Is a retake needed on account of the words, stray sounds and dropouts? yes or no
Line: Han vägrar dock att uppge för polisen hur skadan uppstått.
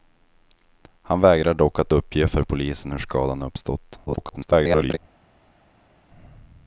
yes